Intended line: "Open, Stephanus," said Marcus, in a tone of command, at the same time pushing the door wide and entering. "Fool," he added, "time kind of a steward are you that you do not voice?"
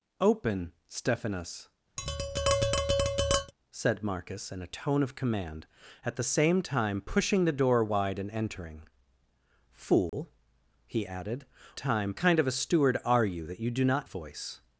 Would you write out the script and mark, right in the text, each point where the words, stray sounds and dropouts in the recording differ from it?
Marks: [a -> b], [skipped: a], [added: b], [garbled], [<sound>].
"Open, Stephanus," [tap] said Marcus, in a tone of command, at the same time pushing the door wide and entering. "Fool," [dropout] he added, "time kind of a steward are you that you do not voice?"